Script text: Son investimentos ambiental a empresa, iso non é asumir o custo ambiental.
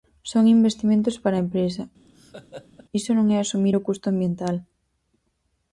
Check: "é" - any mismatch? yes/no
no